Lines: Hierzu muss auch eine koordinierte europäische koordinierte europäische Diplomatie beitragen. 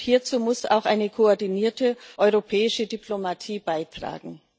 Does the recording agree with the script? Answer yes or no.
no